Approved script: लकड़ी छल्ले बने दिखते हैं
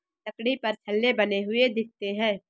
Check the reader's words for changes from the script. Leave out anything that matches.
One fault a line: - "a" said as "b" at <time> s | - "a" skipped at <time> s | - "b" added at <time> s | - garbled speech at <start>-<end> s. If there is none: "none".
- "पर" added at 0.6 s
- "हुए" added at 1.4 s